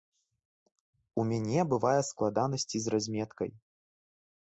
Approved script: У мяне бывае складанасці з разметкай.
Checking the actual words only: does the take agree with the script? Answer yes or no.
yes